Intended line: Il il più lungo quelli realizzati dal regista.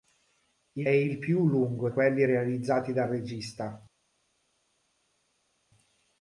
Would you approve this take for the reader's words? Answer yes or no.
yes